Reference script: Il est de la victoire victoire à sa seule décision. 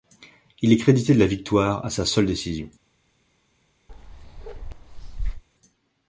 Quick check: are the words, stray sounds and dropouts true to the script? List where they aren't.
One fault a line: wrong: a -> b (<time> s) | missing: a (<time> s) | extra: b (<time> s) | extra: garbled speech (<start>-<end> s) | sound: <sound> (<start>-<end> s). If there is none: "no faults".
extra: crédité (0.8 s)
missing: victoire (1.9 s)
sound: bark (3.9-5.4 s)